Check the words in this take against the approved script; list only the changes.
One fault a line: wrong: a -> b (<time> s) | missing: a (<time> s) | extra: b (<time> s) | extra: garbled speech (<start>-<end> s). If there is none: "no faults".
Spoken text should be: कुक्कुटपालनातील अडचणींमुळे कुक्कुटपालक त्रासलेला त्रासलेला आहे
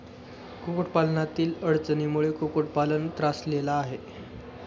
missing: त्रासलेला (3.7 s)